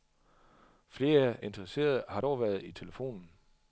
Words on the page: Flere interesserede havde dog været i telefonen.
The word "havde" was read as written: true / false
false